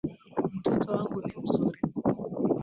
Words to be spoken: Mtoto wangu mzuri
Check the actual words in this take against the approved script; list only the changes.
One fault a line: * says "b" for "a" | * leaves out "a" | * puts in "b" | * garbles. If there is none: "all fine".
* puts in "ni"